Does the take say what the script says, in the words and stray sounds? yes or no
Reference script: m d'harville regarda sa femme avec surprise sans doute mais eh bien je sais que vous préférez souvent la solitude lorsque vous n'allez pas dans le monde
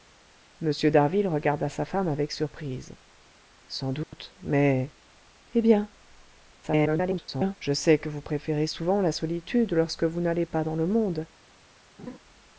no